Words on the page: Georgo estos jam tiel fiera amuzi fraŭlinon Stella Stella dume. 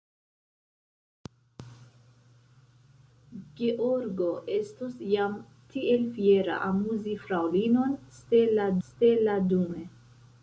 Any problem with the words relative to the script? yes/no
no